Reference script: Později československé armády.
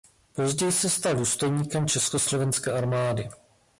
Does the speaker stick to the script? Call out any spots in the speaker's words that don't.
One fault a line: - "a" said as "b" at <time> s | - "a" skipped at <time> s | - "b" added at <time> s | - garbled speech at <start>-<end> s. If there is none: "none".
- "se stal důstojníkem" added at 0.7 s